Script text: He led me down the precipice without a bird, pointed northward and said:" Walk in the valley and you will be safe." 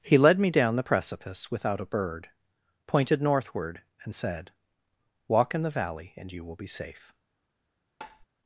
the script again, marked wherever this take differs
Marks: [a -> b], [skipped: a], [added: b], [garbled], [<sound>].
He led me down the precipice without a bird, pointed northward and said:" Walk in the valley and you will be safe." [tap]